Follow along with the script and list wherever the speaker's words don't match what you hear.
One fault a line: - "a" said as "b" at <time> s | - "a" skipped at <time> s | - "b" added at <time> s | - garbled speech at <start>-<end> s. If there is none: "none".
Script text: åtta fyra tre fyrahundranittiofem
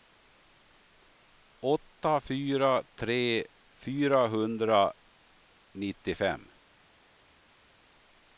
none